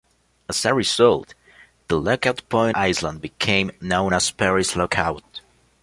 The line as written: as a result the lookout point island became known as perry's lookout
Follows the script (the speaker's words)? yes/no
yes